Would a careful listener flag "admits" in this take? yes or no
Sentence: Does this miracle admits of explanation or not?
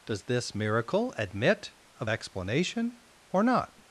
yes